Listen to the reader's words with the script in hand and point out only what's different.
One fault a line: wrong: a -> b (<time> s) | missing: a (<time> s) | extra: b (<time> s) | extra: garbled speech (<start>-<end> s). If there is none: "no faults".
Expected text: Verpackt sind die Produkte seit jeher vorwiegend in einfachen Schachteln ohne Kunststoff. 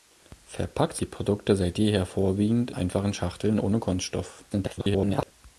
missing: sind (1.0 s)
missing: in (2.7 s)
extra: garbled speech (4.5-5.3 s)